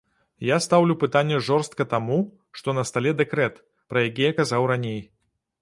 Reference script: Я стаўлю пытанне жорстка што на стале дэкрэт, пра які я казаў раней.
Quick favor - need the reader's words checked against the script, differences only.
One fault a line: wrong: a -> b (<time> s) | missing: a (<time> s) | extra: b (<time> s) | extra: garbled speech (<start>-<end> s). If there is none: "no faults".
extra: таму (1.9 s)